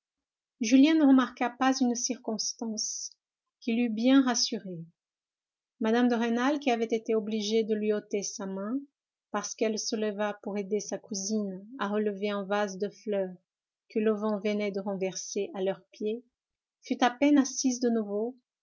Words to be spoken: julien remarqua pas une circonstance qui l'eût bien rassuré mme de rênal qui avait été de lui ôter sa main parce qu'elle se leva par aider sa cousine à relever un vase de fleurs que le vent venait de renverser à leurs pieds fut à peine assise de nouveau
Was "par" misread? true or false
true